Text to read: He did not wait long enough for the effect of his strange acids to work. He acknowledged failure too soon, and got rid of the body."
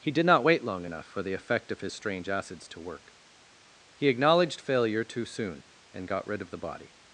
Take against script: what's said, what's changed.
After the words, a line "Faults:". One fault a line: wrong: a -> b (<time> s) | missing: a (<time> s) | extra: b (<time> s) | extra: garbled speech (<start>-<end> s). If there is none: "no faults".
He did not wait long enough for the effect of his strange acids to work. He acknowledged failure too soon, and got rid of the body."
Faults:
no faults